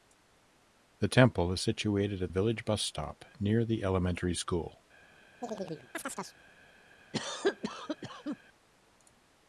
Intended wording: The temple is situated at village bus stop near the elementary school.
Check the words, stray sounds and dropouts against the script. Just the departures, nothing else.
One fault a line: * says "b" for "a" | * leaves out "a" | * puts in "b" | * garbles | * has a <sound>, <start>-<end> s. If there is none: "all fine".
* has a chirp, 5.4-6.4 s
* has a cough, 7.1-8.4 s